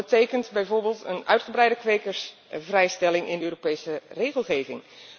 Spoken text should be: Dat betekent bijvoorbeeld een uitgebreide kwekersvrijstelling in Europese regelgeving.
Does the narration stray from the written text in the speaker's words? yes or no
no